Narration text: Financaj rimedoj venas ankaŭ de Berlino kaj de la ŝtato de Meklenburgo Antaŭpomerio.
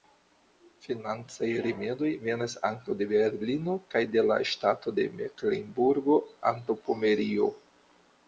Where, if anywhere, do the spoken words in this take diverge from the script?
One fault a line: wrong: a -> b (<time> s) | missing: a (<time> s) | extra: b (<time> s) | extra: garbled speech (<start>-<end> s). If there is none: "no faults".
no faults